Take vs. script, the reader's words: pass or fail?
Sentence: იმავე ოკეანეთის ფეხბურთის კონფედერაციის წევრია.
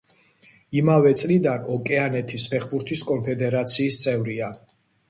fail